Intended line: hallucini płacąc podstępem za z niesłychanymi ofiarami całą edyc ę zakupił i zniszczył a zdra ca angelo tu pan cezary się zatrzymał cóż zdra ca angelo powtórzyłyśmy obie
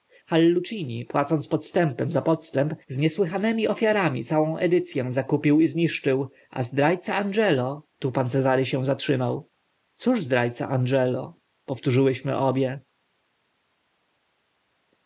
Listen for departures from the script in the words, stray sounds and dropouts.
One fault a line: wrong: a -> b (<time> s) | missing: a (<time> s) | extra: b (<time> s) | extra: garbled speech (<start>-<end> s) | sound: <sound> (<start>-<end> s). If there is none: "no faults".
extra: podstęp (2.2 s)